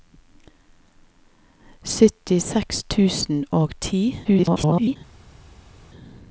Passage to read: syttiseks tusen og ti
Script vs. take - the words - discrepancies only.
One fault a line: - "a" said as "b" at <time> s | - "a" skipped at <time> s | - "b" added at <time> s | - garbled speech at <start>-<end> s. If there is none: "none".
- garbled speech at 4.2-5.0 s